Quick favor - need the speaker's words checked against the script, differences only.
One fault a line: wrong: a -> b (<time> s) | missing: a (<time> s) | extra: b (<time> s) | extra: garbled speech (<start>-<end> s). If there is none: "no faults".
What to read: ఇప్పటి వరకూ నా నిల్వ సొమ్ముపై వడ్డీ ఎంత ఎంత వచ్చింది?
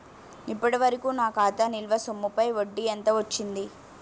extra: ఖాతా (1.4 s)
missing: ఎంత (3.1 s)